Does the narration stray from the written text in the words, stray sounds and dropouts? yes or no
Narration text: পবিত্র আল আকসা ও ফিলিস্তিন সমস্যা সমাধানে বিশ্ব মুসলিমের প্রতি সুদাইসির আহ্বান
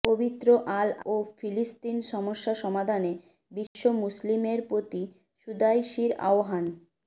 yes